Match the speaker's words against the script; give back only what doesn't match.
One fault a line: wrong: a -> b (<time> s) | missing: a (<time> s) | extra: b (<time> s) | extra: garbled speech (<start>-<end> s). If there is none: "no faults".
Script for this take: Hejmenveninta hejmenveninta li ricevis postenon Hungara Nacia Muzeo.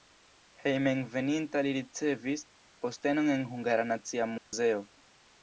missing: hejmenveninta (1.6 s)
extra: en (3.3 s)